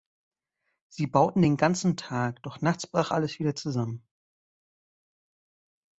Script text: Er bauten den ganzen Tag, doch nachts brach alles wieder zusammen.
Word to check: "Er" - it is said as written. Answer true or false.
false